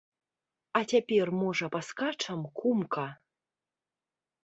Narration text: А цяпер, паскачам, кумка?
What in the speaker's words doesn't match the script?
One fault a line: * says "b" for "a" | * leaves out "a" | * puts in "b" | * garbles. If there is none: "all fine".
* puts in "можа"